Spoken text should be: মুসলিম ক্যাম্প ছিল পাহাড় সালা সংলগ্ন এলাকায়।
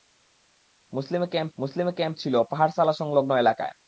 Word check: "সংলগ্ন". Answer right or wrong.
right